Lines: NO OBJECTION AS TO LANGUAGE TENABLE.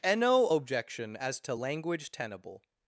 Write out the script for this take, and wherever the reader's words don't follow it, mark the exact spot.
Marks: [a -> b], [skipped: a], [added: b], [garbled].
[added: and] NO OBJECTION AS TO LANGUAGE TENABLE.